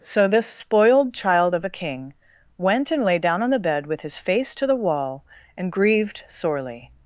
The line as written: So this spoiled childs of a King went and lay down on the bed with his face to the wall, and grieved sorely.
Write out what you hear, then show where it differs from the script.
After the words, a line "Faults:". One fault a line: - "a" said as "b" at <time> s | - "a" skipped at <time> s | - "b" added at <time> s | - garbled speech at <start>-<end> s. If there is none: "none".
So this spoiled child of a King went and lay down on the bed with his face to the wall, and grieved sorely.
Faults:
- "childs" said as "child" at 1.1 s